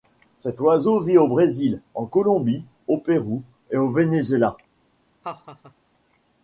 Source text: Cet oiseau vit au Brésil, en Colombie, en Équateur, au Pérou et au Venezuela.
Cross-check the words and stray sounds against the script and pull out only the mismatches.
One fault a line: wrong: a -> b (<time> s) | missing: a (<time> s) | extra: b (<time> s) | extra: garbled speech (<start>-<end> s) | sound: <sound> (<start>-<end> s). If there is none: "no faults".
missing: en Équateur (2.6 s)
sound: laugh (5.2-5.7 s)